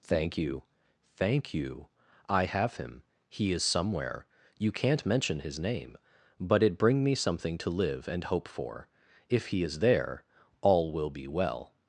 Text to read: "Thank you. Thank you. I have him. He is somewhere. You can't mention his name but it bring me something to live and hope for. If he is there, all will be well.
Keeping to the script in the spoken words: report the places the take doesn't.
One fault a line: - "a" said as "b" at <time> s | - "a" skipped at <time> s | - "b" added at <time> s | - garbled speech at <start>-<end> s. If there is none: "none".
none